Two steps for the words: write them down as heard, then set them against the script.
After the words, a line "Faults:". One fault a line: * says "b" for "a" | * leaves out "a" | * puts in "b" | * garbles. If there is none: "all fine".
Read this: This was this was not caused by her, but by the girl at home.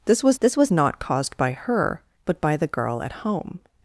This was this was not caused by her, but by the girl at home.
Faults:
all fine